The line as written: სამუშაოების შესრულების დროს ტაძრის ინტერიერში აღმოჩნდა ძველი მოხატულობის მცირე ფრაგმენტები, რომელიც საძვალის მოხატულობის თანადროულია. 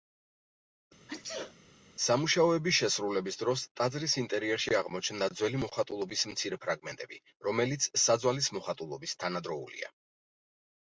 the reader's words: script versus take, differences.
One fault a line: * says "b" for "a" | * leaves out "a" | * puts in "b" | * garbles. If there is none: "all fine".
all fine